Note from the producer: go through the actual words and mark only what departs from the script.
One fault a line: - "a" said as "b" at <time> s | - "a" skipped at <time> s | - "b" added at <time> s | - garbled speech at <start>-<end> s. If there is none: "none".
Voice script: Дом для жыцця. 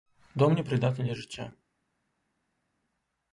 - "непрыдатны" added at 0.6 s